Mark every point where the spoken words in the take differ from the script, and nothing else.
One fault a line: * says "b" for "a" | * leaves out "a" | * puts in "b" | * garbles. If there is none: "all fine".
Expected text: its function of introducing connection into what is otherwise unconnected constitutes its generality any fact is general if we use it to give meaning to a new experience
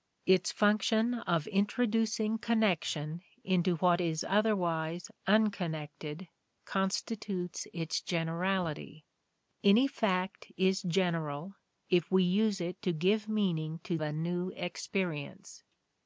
all fine